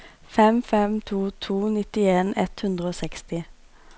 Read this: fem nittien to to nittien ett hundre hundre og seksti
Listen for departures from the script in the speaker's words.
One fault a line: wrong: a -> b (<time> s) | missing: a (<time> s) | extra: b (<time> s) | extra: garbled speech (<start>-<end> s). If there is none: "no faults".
wrong: nittien -> fem (0.6 s)
missing: hundre (2.9 s)